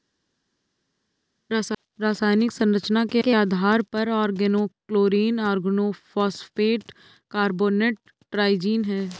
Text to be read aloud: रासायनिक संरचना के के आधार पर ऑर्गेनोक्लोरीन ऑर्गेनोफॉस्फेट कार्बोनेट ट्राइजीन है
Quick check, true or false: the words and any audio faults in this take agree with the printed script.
true